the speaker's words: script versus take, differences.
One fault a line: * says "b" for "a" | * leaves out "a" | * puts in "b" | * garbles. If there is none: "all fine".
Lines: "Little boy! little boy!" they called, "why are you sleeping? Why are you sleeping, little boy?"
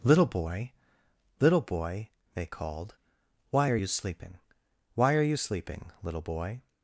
all fine